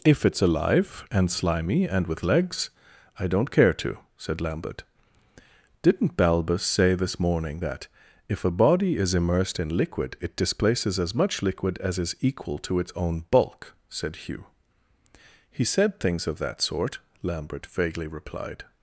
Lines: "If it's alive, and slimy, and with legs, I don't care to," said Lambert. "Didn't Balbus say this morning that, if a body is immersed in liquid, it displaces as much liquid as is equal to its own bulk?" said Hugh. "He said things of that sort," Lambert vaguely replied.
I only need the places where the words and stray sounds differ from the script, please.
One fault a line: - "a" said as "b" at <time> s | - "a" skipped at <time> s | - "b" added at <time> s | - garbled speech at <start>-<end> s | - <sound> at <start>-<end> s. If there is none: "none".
none